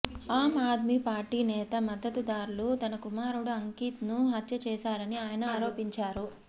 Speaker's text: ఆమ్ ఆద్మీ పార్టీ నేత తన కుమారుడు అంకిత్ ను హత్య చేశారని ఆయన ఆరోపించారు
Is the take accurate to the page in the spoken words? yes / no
no